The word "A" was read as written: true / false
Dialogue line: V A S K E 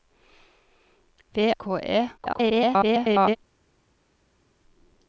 false